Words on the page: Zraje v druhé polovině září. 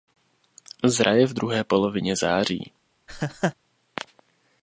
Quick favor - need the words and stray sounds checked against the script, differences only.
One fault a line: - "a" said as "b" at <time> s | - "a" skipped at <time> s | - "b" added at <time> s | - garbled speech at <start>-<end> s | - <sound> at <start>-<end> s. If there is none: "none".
- laugh at 3.1-3.5 s